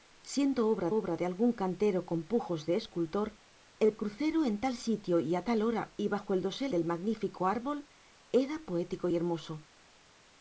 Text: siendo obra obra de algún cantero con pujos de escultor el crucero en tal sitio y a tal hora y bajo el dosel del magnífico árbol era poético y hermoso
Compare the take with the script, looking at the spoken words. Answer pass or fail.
pass